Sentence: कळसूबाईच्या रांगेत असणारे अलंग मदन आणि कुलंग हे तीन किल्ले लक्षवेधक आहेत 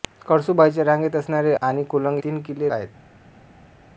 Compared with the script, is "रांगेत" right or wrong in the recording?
right